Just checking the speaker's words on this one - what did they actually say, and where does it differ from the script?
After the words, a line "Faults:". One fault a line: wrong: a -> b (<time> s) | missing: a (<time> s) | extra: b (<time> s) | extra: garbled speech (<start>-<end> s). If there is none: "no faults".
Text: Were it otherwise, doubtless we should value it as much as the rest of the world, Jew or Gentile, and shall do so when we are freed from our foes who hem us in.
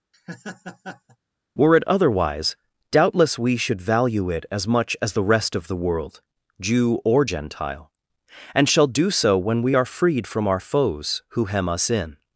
Were it otherwise, doubtless we should value it as much as the rest of the world, Jew or Gentile, and shall do so when we are freed from our foes who hem us in.
Faults:
no faults